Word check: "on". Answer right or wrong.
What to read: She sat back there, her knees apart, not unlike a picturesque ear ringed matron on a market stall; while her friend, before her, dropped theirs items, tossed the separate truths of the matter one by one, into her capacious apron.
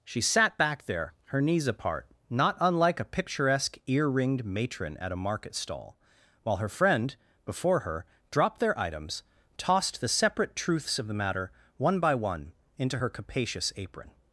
wrong